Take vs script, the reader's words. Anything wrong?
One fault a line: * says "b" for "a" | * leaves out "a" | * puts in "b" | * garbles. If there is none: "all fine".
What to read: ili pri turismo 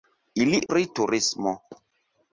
all fine